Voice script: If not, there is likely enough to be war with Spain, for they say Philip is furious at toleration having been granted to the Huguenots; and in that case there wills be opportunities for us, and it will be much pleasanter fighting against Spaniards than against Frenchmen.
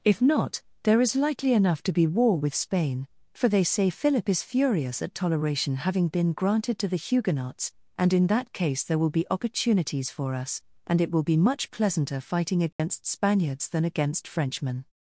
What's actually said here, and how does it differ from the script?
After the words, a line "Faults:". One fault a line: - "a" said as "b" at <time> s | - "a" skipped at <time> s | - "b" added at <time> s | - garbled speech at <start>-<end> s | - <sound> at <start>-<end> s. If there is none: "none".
If not, there is likely enough to be war with Spain, for they say Philip is furious at toleration having been granted to the Huguenots; and in that case there will be opportunities for us, and it will be much pleasanter fighting against Spaniards than against Frenchmen.
Faults:
- "wills" said as "will" at 9.0 s
- dropout at 12.7-12.8 s